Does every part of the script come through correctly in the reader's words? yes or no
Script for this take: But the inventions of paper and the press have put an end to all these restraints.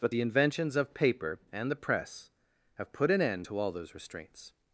no